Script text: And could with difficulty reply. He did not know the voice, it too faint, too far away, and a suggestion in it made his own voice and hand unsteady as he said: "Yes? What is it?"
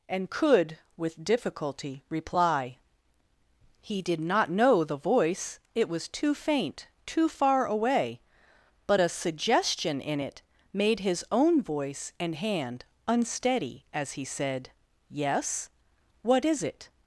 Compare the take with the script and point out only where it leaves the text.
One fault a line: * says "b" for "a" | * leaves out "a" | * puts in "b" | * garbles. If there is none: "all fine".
* puts in "was"
* says "but" for "and"